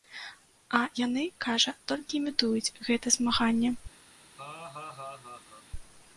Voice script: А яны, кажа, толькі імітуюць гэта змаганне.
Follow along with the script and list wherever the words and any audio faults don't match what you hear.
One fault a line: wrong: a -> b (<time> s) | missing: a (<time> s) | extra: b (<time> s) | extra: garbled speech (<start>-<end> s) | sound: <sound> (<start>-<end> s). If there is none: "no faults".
sound: laugh (4.4-5.7 s)